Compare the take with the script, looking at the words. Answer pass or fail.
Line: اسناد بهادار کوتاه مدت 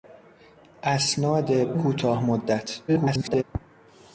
fail